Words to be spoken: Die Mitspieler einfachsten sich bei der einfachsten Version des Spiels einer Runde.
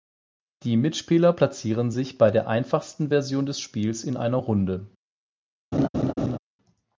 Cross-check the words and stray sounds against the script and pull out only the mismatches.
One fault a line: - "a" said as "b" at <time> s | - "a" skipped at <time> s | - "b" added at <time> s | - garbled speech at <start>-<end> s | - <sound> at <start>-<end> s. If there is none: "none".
- "einfachsten" said as "platzieren" at 1.3 s
- "in" added at 4.0 s
- laugh at 5.7-6.4 s